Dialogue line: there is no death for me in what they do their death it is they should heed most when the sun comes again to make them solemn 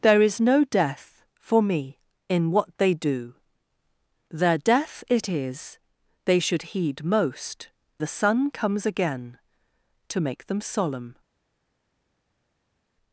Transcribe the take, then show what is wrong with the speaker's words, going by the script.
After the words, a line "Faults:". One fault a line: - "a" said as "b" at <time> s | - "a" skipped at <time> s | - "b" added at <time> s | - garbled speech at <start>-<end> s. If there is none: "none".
there is no death for me in what they do their death it is they should heed most the sun comes again to make them solemn
Faults:
- "when" skipped at 7.7 s